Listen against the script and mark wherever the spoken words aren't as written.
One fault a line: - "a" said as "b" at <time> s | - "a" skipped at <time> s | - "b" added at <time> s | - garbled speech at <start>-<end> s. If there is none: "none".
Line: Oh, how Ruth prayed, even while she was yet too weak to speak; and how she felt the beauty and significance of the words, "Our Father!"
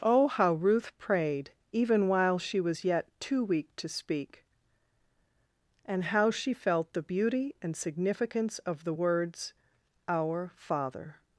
none